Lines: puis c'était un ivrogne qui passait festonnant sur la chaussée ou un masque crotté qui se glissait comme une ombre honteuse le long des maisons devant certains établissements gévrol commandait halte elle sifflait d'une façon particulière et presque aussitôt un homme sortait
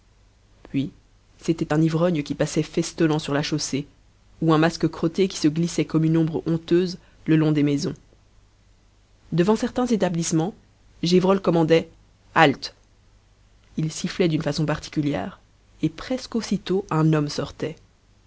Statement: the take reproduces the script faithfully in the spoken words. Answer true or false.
false